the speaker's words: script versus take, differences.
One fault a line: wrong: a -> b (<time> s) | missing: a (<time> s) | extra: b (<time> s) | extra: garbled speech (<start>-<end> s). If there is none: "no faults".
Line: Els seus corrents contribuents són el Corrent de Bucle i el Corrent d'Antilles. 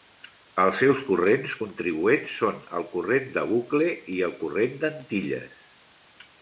no faults